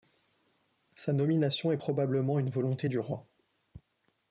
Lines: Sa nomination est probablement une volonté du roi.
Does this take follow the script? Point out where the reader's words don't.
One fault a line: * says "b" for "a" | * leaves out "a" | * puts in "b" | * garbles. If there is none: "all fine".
all fine